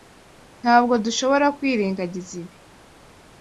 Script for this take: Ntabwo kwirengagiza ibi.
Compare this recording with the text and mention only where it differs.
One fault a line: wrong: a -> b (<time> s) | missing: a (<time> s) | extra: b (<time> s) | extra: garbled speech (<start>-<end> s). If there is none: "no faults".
extra: dushobora (1.1 s)